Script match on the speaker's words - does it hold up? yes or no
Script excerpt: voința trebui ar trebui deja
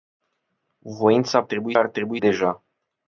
yes